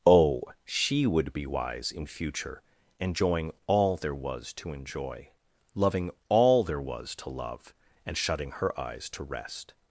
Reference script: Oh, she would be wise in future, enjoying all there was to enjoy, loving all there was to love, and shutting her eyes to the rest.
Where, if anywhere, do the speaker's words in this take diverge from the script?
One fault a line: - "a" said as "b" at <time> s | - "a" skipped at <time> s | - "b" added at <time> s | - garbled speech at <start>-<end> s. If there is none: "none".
- "the" skipped at 9.2 s